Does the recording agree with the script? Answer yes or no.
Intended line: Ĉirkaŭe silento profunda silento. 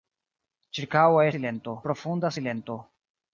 yes